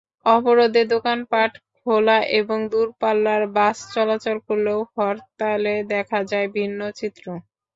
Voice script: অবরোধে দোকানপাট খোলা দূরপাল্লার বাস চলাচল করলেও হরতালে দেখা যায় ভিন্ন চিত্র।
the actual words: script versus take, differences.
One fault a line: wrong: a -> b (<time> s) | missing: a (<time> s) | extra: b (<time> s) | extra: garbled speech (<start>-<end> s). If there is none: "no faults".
extra: এবং (2.4 s)